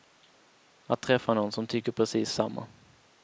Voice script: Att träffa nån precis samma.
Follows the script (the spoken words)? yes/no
no